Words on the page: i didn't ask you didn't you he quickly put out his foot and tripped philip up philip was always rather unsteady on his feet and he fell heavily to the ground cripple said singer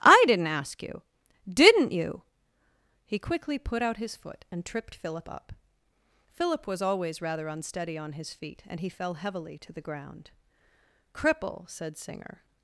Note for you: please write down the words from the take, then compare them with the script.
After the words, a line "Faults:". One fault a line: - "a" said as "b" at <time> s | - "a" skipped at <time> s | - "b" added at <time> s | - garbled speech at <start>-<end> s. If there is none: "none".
i didn't ask you didn't you he quickly put out his foot and tripped philip up philip was always rather unsteady on his feet and he fell heavily to the ground cripple said singer
Faults:
none